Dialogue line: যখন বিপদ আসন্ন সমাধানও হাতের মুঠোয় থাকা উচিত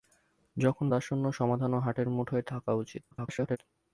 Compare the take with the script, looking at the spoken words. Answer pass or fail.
fail